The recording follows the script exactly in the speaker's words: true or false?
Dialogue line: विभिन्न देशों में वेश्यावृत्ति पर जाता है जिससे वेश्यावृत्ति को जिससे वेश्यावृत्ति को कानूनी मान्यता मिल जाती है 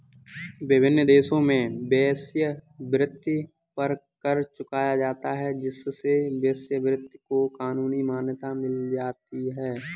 false